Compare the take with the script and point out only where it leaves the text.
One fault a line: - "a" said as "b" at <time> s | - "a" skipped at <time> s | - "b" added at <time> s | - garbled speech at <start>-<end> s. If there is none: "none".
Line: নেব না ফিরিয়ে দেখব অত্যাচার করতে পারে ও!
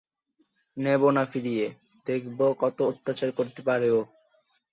- "কত" added at 2.6 s